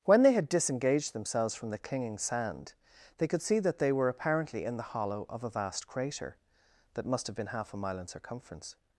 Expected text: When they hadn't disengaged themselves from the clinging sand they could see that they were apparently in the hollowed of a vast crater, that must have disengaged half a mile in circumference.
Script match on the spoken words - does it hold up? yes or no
no